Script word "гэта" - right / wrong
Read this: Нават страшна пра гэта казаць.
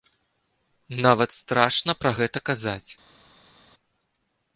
right